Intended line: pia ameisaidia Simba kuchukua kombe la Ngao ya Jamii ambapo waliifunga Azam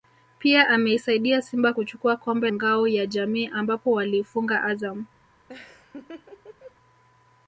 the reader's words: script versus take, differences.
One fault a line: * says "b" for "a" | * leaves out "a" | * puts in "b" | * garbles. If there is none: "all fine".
* leaves out "la"